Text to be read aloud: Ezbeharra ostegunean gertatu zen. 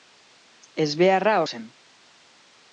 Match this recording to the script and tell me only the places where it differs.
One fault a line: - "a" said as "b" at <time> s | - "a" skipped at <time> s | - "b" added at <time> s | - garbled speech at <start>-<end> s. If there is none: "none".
- "ostegunean gertatu" skipped at 1.4 s